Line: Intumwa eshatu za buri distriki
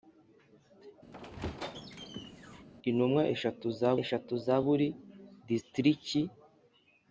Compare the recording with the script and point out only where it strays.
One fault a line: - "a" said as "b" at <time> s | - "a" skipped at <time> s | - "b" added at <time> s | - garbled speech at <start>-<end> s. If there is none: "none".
- "eshatu za" added at 4.0 s